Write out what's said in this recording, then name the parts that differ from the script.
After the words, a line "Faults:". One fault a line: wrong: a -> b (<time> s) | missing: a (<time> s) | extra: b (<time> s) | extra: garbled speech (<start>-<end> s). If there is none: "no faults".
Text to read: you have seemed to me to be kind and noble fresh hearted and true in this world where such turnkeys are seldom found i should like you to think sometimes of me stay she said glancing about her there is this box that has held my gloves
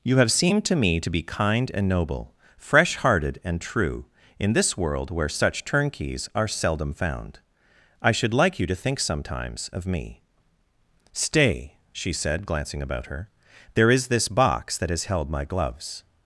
you have seemed to me to be kind and noble fresh hearted and true in this world where such turnkeys are seldom found i should like you to think sometimes of me stay she said glancing about her there is this box that has held my gloves
Faults:
no faults